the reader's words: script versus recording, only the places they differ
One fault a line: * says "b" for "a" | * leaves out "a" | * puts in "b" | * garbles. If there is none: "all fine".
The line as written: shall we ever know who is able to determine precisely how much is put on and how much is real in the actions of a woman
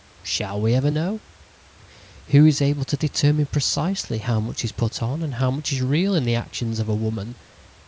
all fine